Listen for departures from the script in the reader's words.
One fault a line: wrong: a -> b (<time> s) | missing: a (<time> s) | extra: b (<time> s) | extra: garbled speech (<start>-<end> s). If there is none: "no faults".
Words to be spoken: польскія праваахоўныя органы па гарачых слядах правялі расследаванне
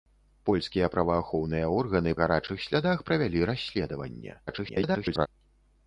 missing: па (2.1 s)
extra: garbled speech (4.5-5.3 s)